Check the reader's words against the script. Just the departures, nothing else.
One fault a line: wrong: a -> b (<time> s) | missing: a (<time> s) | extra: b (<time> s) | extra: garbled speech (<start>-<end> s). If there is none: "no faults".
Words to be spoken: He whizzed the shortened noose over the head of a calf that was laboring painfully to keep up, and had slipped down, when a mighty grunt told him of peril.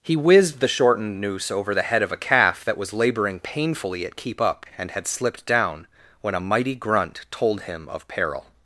wrong: to -> at (4.0 s)